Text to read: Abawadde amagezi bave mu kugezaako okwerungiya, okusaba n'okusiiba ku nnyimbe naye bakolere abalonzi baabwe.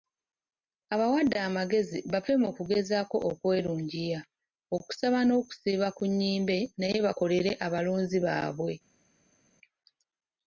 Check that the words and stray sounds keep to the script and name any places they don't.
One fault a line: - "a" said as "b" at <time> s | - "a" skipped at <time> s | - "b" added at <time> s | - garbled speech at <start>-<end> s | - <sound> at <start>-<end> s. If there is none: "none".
none